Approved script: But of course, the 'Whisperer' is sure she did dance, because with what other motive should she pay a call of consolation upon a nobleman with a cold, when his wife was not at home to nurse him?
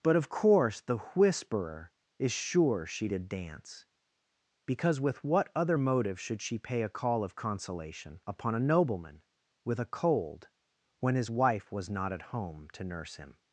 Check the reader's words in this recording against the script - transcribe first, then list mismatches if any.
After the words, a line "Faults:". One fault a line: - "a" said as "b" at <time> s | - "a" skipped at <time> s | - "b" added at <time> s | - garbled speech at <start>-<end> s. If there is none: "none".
But of course, the 'Whisperer' is sure she did dance, because with what other motive should she pay a call of consolation upon a nobleman with a cold, when his wife was not at home to nurse him?
Faults:
none